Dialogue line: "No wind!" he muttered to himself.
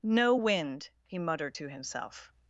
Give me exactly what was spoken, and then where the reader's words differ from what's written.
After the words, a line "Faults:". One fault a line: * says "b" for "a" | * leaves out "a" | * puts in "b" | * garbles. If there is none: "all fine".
"No wind!" he muttered to himself.
Faults:
all fine